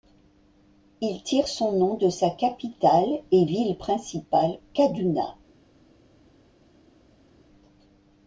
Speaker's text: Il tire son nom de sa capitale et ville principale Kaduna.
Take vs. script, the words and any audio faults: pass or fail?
pass